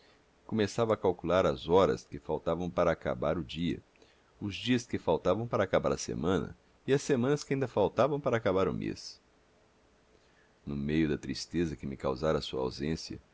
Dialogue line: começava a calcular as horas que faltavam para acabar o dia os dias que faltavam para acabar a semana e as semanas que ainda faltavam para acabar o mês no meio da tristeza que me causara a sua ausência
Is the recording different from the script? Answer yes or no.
no